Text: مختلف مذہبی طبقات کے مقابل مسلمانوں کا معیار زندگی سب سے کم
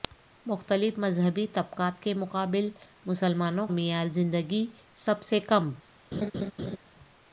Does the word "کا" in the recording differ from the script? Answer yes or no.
yes